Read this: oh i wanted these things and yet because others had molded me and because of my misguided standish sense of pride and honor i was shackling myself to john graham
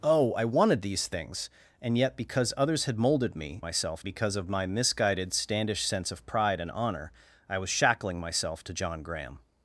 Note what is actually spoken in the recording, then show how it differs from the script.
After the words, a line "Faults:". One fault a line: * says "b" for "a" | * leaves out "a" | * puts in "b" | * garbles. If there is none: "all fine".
oh i wanted these things and yet because others had molded me myself because of my misguided standish sense of pride and honor i was shackling myself to john graham
Faults:
* says "myself" for "and"